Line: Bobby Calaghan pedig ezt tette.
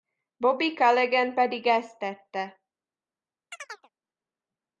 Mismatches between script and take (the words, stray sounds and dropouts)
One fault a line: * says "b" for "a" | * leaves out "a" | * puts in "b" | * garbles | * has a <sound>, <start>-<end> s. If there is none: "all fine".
* has a chirp, 3.5-3.9 s